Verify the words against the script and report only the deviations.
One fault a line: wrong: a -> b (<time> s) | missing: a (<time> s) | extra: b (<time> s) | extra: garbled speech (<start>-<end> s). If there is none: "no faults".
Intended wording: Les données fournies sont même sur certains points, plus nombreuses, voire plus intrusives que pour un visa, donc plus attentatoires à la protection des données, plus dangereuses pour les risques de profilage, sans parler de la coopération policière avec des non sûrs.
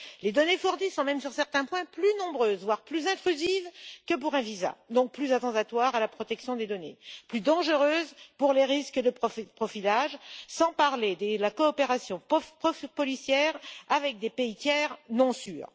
extra: pays tiers (14.3 s)